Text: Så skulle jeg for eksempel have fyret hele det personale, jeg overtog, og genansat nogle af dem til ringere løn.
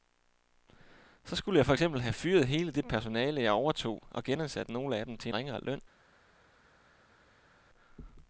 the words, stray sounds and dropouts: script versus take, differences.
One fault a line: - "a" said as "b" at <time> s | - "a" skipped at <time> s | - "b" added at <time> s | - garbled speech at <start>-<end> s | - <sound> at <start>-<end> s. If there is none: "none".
none